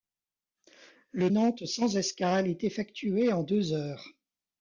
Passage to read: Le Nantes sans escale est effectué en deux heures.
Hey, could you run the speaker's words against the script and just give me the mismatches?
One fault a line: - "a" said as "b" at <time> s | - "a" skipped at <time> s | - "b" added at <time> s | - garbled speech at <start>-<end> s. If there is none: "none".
none